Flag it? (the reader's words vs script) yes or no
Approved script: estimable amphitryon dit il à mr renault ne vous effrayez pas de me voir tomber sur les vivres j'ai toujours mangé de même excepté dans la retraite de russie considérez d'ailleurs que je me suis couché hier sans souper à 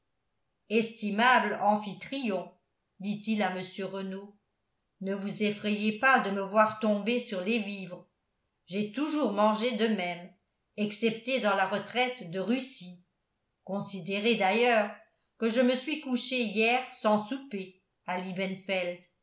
no